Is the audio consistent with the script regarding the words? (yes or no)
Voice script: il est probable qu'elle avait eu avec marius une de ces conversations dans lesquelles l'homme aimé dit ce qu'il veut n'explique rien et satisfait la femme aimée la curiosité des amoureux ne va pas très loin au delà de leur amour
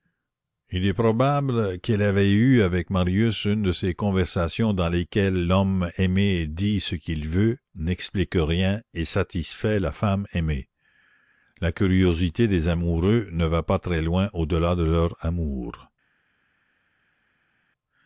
yes